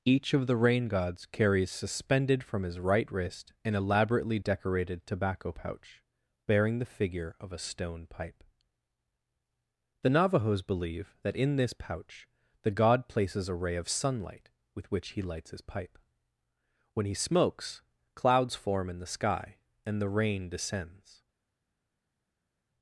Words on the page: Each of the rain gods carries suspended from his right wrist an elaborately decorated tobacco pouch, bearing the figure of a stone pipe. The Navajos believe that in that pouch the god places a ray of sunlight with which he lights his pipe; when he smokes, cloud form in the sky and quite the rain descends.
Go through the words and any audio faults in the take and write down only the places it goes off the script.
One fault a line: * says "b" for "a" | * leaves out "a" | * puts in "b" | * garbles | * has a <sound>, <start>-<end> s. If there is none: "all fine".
* says "this" for "that"
* says "clouds" for "cloud"
* leaves out "quite"